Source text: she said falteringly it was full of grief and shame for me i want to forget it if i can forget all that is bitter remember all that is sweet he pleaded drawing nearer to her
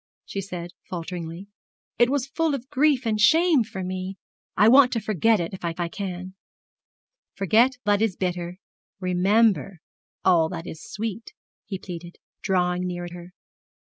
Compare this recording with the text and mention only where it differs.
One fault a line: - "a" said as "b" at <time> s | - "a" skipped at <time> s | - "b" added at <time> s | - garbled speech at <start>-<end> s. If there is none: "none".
- "i" added at 5.8 s
- "all" skipped at 7.8 s
- "to" skipped at 13.1 s